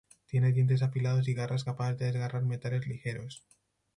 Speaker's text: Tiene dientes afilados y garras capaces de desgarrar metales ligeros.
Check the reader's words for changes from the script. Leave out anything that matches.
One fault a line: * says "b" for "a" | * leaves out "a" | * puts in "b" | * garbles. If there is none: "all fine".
all fine